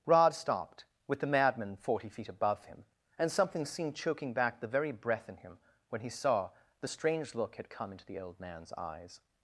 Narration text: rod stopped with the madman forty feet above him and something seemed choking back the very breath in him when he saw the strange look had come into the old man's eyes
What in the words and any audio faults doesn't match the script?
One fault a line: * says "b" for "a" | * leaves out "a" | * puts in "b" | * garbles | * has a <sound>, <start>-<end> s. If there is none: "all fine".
all fine